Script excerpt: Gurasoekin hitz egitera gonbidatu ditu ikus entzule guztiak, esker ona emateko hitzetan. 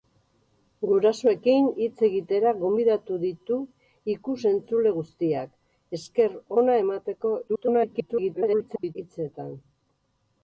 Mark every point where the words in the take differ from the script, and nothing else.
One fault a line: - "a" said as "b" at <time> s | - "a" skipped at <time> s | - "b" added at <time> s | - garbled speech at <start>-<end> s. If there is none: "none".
- garbled speech at 7.5-9.0 s